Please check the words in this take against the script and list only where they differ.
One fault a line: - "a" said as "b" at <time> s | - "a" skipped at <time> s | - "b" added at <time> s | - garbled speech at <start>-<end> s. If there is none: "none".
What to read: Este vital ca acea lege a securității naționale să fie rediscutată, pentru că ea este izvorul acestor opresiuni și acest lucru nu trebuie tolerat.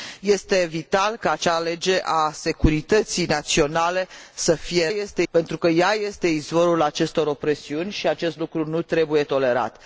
- "rediscutată" said as "este" at 4.9 s